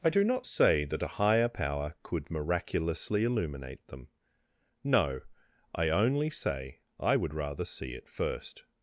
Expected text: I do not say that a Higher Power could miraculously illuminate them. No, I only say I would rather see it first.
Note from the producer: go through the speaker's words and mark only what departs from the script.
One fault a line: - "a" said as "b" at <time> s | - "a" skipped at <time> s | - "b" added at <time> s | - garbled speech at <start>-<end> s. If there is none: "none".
none